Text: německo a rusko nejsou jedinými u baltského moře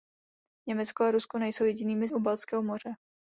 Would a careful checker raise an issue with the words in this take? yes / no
no